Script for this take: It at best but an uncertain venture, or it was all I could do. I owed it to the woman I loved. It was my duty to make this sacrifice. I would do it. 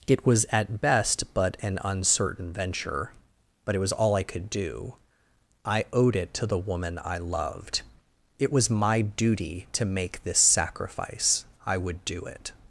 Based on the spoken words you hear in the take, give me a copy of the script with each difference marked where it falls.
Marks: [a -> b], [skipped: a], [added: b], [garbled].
It [added: was] at best but an uncertain venture, [or -> but] it was all I could do. I owed it to the woman I loved. It was my duty to make this sacrifice. I would do it.